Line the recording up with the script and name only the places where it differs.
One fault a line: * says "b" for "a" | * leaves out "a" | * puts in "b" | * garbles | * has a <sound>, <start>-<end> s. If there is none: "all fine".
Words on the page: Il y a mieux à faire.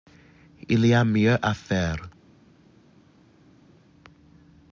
all fine